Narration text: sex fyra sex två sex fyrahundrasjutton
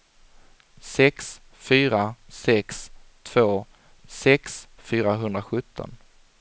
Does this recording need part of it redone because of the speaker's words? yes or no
no